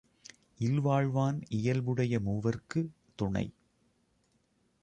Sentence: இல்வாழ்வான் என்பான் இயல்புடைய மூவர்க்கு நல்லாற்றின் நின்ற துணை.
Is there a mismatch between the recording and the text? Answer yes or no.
yes